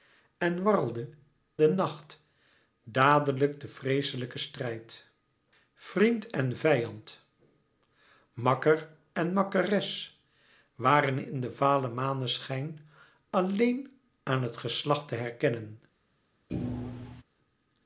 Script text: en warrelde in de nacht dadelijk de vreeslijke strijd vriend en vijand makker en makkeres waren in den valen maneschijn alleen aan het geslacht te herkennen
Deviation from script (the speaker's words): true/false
true